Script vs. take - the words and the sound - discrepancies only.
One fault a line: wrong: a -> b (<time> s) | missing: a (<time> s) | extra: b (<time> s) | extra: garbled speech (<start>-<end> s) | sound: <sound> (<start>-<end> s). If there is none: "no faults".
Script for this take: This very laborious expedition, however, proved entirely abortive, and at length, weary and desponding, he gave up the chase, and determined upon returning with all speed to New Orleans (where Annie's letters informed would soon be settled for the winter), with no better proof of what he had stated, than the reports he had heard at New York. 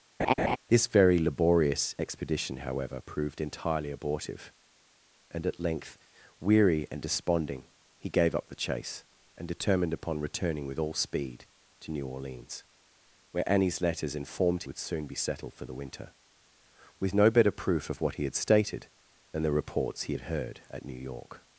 sound: laugh (0.2-0.6 s)